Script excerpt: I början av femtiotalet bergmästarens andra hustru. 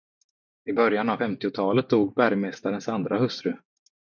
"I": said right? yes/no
yes